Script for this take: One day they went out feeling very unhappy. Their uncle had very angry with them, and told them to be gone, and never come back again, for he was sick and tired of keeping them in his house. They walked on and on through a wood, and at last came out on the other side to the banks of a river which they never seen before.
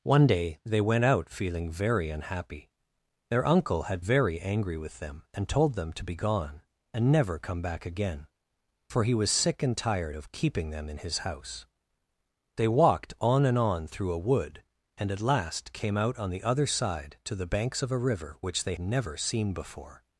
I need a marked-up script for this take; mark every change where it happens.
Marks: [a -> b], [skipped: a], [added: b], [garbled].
One day they went out feeling very unhappy. Their uncle had very angry with them, and told them to be gone, and never come back again, for he was sick and tired of keeping them in his house. They walked on and on through a wood, and at last came out on the other side to the banks of a river which they never seen before.